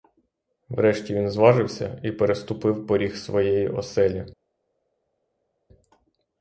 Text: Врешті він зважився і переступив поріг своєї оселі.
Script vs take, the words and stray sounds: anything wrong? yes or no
no